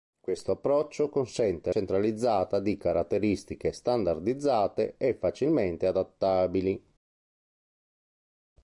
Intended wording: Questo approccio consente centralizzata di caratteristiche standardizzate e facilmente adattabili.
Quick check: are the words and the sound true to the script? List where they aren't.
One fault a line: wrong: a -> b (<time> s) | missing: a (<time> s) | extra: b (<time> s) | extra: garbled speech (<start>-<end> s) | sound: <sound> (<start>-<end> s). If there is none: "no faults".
no faults